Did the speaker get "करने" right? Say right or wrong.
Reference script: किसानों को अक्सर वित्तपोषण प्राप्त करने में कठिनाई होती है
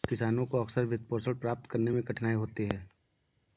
right